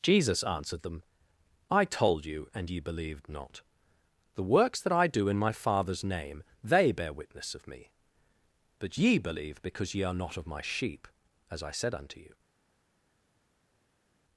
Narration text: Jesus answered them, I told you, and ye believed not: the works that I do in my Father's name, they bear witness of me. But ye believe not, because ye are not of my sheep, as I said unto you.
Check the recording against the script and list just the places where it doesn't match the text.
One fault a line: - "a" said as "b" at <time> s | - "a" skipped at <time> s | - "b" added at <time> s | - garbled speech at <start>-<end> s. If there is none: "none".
- "not" skipped at 9.6 s